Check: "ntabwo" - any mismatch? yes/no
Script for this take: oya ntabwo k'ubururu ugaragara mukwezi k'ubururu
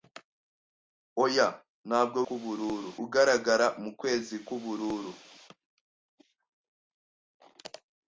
no